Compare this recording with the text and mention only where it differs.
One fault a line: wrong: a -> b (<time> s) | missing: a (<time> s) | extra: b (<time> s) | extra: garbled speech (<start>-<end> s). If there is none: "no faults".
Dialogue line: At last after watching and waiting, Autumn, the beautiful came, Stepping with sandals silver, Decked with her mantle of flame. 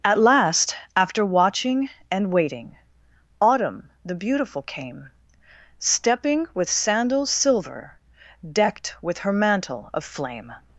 no faults